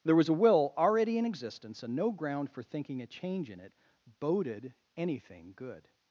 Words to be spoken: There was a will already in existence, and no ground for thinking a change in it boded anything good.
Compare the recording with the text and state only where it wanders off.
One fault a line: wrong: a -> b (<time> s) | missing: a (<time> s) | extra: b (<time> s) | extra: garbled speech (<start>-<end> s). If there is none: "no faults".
no faults